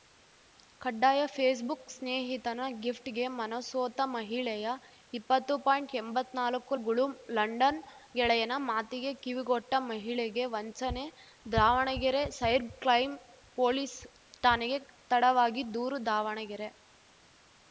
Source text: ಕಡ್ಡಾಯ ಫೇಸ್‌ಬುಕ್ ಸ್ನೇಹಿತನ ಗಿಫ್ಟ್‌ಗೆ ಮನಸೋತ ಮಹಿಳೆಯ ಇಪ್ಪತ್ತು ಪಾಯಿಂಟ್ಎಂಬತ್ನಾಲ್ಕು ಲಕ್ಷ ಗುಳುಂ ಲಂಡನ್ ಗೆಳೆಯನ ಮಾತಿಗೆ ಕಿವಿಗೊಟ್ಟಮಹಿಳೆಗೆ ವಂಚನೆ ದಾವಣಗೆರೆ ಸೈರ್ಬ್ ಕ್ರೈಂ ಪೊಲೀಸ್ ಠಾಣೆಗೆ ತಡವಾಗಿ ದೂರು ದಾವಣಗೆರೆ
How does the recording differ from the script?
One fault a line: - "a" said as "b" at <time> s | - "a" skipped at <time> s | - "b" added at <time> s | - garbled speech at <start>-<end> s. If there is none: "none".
- "ಲಕ್ಷ" skipped at 6.8 s